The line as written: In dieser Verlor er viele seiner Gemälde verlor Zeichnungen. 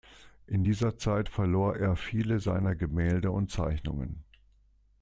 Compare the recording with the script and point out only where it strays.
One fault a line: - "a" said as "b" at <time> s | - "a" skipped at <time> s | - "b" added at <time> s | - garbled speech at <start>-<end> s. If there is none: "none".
- "Zeit" added at 1.0 s
- "verlor" said as "und" at 3.3 s